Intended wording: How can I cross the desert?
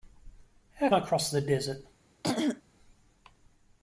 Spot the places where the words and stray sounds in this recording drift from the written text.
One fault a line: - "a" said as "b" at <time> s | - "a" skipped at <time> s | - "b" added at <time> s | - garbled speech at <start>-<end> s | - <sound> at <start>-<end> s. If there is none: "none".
- "can" skipped at 0.9 s
- throat clearing at 2.2-2.6 s